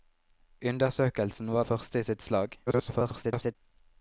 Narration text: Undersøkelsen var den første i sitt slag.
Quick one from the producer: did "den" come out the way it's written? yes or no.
no